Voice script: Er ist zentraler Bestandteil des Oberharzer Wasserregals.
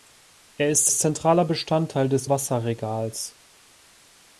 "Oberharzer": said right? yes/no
no